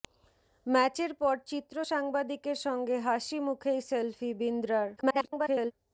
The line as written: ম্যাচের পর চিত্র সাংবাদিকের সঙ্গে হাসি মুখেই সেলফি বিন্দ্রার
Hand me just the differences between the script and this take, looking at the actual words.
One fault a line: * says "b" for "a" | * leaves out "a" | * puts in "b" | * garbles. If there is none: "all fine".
* garbles